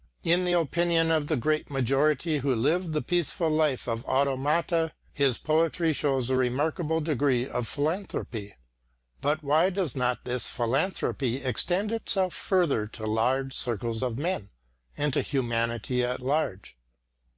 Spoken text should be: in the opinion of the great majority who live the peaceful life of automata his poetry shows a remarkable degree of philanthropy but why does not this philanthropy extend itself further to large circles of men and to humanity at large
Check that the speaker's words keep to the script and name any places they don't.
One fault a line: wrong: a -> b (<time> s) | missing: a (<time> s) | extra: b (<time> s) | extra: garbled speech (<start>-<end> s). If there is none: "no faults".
no faults